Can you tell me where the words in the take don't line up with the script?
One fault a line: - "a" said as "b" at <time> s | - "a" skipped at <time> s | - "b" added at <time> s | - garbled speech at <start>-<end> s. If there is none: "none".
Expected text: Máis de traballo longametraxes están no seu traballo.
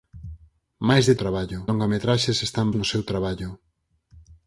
none